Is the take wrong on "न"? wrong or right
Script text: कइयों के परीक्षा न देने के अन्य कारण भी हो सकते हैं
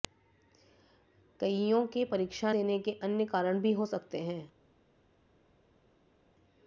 wrong